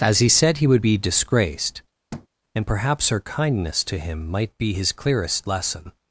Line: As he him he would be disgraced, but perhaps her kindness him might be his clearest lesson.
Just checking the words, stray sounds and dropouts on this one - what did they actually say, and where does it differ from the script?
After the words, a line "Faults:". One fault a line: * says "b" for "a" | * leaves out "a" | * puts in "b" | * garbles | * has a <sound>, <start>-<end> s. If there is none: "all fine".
As he said he would be disgraced, and perhaps her kindness to him might be his clearest lesson.
Faults:
* says "said" for "him"
* has a thud, 2.1-2.3 s
* says "and" for "but"
* puts in "to"